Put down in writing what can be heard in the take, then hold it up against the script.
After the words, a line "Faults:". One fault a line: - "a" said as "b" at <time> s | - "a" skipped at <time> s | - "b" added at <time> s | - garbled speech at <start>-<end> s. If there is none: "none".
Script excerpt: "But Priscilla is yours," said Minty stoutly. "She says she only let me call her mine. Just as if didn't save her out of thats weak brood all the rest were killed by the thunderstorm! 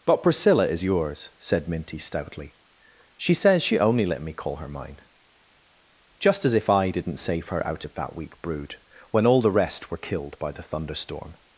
"But Priscilla is yours," said Minty stoutly. "She says she only let me call her mine. Just as if I didn't save her out of that weak brood when all the rest were killed by the thunderstorm!
Faults:
- "I" added at 6.7 s
- "thats" said as "that" at 7.9 s
- "when" added at 9.1 s